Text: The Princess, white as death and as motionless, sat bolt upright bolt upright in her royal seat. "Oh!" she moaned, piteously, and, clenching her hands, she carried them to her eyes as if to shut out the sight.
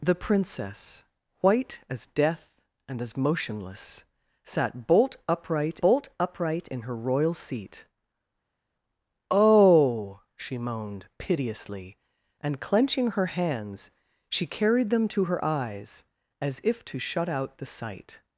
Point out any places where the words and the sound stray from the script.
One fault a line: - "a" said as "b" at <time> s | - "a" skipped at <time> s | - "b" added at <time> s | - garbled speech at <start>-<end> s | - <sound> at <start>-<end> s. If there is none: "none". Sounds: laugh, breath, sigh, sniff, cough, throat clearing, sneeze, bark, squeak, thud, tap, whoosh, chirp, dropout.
none